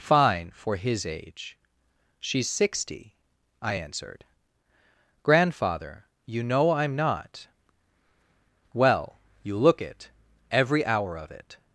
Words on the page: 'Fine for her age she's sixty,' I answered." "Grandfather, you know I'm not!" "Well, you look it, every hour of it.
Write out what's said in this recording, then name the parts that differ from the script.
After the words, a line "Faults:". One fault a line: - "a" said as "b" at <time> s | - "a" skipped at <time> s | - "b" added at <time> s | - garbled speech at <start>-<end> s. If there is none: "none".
'Fine for his age she's sixty,' I answered." "Grandfather, you know I'm not!" "Well, you look it, every hour of it.
Faults:
- "her" said as "his" at 0.8 s